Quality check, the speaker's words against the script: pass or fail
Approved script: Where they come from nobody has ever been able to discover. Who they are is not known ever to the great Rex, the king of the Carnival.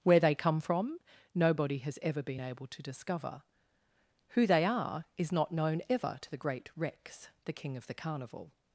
pass